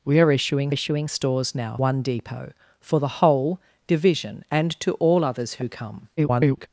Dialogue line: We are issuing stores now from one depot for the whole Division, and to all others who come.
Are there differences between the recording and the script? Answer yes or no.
yes